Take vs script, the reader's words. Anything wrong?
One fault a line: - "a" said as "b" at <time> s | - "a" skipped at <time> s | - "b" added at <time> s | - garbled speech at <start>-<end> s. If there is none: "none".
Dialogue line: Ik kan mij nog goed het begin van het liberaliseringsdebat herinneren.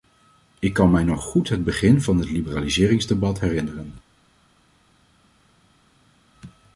none